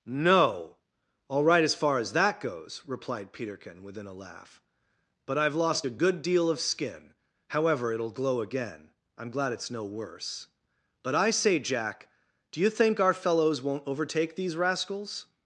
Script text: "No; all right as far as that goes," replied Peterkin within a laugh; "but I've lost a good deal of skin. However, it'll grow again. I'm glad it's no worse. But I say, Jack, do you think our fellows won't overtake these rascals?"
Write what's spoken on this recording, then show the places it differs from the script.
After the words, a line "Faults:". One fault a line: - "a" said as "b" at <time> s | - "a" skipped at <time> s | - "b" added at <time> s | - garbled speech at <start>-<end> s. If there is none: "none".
"No; all right as far as that goes," replied Peterkin within a laugh; "but I've lost a good deal of skin. However, it'll glow again. I'm glad it's no worse. But I say, Jack, do you think our fellows won't overtake these rascals?"
Faults:
- "grow" said as "glow" at 8.1 s